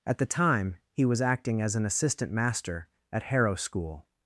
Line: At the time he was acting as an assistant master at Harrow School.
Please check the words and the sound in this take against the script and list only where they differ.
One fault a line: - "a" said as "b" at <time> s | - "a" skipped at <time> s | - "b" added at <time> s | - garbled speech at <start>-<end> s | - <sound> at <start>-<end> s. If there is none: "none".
none